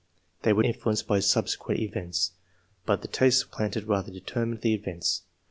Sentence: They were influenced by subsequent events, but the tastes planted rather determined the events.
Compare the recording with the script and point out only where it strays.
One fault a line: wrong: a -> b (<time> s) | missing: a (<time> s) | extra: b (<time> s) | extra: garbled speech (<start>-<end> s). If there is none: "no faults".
no faults